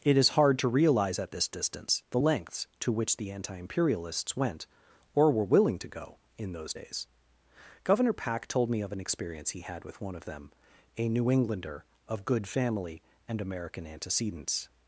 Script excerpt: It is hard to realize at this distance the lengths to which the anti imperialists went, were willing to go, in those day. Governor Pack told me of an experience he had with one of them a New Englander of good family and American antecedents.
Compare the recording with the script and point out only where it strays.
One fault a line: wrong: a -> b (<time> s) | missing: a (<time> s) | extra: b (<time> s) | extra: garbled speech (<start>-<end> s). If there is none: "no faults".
extra: or (5.1 s)
wrong: day -> days (6.7 s)